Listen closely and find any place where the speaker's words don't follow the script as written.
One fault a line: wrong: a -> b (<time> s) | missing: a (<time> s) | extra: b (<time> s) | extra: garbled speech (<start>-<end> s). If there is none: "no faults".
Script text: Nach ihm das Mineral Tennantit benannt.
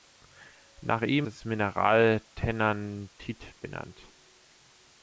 no faults